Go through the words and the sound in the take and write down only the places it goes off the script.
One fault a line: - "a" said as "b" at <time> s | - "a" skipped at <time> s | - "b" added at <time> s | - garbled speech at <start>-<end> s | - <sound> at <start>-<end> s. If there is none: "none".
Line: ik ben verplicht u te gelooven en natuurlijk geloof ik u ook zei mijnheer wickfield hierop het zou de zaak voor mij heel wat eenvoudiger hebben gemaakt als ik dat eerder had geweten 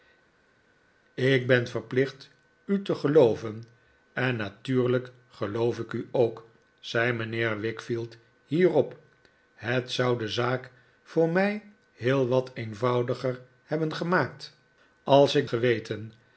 - "dat eerder had" skipped at 15.5 s